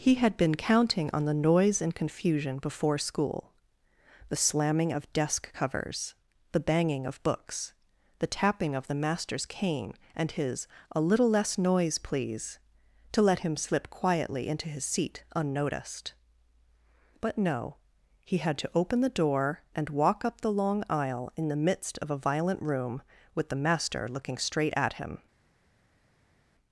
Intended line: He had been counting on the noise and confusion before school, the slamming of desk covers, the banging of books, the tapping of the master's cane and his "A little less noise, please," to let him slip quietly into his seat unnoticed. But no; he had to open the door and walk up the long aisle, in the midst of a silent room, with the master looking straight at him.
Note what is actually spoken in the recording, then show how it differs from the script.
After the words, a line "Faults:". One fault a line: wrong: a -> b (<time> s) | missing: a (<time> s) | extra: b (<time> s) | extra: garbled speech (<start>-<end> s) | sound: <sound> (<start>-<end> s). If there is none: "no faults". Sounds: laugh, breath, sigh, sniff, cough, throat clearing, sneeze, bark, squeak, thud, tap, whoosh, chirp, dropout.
He had been counting on the noise and confusion before school, the slamming of desk covers, the banging of books, the tapping of the master's cane and his "A little less noise, please," to let him slip quietly into his seat unnoticed. But no; he had to open the door and walk up the long aisle, in the midst of a violent room, with the master looking straight at him.
Faults:
wrong: silent -> violent (22.2 s)